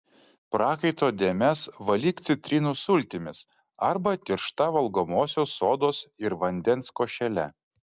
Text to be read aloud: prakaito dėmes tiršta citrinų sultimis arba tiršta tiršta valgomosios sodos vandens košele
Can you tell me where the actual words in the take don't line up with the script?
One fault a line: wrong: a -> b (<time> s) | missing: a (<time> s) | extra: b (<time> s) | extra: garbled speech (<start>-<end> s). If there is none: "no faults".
wrong: tiršta -> valyk (1.9 s)
missing: tiršta (4.7 s)
extra: ir (6.3 s)